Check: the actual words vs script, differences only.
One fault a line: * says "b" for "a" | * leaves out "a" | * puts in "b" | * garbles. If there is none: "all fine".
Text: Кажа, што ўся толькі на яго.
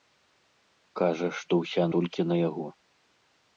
all fine